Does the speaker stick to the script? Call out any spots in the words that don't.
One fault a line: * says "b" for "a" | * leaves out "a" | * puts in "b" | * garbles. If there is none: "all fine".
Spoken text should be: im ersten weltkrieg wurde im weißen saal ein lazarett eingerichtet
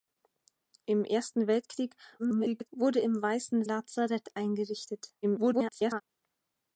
* garbles
* leaves out "saal ein"
* garbles